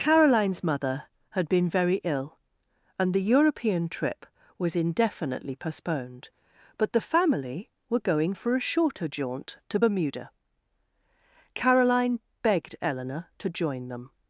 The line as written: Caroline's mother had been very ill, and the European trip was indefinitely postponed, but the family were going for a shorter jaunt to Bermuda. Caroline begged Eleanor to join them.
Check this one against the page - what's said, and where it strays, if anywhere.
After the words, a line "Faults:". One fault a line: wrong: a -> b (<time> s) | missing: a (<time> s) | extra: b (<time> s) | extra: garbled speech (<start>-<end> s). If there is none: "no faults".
Caroline's mother had been very ill, and the European trip was indefinitely postponed, but the family were going for a shorter jaunt to Bermuda. Caroline begged Eleanor to join them.
Faults:
no faults